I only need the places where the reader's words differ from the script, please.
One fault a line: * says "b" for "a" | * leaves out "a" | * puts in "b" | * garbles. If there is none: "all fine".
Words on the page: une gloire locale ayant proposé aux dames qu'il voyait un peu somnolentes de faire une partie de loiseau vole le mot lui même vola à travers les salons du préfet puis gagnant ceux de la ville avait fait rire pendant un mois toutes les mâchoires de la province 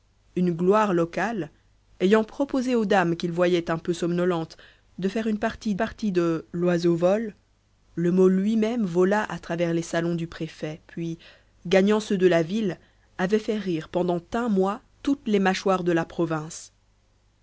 * puts in "partie"